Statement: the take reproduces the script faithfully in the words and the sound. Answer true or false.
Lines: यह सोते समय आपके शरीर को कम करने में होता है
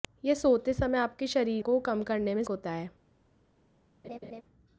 false